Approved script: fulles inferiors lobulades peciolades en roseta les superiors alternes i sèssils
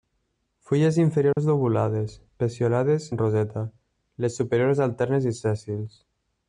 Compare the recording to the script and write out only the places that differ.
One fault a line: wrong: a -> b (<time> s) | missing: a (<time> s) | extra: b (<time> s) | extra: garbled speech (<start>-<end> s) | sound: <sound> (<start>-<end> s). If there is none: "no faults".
sound: dropout (1.3-1.4 s)